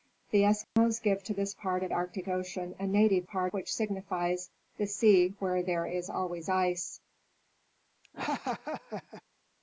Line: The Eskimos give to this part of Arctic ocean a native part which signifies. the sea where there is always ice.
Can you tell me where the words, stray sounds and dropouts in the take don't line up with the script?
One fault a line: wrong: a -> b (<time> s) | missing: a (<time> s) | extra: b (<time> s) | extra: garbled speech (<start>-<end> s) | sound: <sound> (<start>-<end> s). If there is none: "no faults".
sound: dropout (0.6-0.8 s)
sound: laugh (8.0-9.2 s)